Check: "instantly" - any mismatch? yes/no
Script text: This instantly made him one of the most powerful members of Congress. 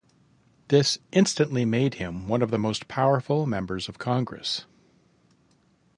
no